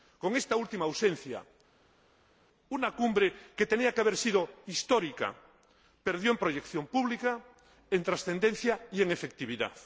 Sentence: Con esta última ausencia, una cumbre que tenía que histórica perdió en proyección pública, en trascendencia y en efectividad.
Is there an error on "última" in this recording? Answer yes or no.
no